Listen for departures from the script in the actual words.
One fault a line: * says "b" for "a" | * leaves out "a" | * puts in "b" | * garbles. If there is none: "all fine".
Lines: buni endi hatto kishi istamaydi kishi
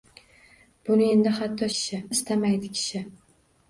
all fine